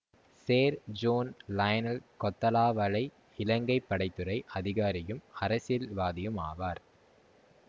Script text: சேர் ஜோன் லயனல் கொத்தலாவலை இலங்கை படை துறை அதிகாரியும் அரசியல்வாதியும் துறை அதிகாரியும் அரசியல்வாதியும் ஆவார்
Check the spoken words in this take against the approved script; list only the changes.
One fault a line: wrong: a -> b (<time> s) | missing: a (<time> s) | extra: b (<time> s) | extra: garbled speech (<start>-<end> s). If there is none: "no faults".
missing: துறை அதிகாரியும் அரசியல்வாதியும் (6.4 s)